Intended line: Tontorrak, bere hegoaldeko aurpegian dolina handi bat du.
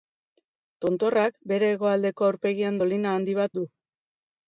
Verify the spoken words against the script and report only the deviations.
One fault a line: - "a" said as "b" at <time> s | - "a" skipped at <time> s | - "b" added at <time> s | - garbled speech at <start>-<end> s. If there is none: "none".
none